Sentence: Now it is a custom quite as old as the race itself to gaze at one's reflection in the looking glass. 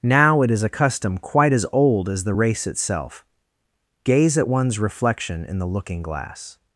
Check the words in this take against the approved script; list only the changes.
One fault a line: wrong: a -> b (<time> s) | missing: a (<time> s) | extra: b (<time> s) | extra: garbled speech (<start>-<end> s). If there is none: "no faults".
missing: to (3.2 s)